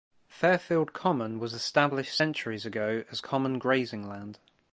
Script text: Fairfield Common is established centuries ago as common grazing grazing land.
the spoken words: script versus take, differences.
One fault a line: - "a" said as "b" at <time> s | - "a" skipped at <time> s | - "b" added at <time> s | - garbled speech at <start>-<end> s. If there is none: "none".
- "is" said as "was" at 1.4 s
- "grazing" skipped at 4.1 s